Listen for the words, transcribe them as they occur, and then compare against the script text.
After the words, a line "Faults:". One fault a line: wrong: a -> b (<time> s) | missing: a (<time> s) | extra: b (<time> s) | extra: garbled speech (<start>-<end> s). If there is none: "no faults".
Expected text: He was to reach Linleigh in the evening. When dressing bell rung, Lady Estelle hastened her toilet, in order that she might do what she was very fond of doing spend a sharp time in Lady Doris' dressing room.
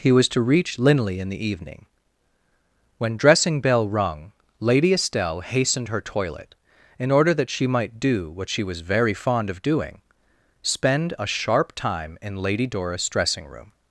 He was to reach Linleigh in the evening. When dressing bell rung, Lady Estelle hastened her toilet, in order that she might do what she was very fond of doing spend a sharp time in Lady Doris' dressing room.
Faults:
no faults